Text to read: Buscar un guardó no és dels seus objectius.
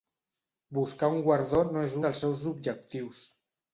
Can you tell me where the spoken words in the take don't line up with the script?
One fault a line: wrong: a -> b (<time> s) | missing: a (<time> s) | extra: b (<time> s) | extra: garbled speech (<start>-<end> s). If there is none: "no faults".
no faults